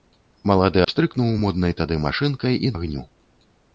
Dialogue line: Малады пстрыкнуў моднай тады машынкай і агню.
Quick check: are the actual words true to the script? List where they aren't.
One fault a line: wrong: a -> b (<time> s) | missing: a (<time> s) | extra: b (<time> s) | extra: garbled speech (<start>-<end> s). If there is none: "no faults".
no faults